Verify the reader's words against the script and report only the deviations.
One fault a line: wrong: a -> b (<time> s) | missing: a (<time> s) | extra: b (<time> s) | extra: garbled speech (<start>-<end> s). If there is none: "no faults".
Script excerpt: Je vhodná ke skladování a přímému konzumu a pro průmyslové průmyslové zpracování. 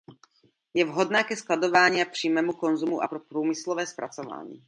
missing: průmyslové (3.9 s)